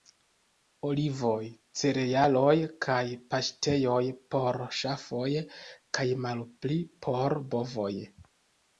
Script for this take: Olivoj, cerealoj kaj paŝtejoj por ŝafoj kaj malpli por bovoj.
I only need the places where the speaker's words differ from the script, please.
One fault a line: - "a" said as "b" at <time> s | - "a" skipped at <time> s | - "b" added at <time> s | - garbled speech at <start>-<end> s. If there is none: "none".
none